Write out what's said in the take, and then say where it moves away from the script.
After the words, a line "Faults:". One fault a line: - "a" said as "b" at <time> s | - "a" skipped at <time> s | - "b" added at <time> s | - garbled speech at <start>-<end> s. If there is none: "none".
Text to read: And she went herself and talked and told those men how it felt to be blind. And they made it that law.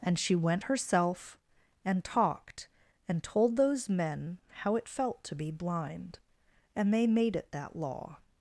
And she went herself and talked and told those men how it felt to be blind. And they made it that law.
Faults:
none